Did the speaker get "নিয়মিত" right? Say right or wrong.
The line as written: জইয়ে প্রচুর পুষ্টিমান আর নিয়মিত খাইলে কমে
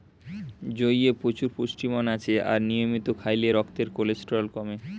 right